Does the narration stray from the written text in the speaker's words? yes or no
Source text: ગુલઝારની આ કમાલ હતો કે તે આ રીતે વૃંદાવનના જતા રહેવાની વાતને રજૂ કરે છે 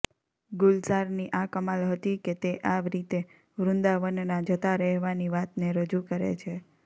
yes